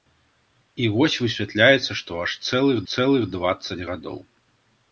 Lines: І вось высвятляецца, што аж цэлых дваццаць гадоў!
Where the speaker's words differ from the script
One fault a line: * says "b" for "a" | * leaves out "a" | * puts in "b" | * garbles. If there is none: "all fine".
* puts in "цэлых"